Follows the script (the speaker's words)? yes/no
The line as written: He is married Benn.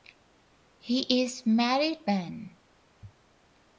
yes